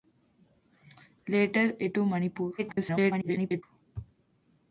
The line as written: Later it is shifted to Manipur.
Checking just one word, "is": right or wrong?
wrong